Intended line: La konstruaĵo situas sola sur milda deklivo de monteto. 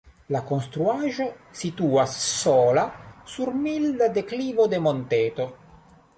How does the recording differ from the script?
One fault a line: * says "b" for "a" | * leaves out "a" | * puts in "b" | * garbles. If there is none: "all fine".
all fine